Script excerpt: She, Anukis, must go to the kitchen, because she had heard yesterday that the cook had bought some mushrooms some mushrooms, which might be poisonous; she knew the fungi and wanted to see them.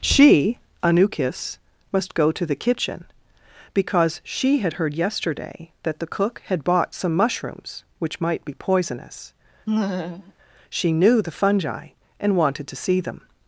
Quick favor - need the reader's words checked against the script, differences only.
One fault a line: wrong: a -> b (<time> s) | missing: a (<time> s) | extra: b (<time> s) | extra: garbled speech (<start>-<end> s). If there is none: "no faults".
missing: some mushrooms (7.8 s)